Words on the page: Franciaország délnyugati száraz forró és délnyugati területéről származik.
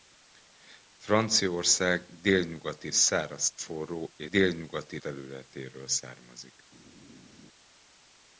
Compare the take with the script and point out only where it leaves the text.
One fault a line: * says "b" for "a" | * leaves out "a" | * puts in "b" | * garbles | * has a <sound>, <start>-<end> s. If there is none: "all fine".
all fine